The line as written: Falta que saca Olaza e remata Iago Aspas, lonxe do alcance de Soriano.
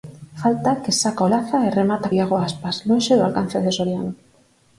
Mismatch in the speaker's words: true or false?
false